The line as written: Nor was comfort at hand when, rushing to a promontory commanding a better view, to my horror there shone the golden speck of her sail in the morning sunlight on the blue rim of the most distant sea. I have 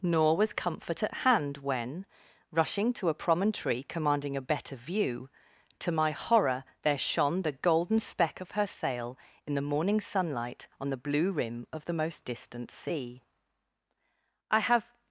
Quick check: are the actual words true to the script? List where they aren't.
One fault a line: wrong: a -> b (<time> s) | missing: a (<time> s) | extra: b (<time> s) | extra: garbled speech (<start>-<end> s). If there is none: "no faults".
no faults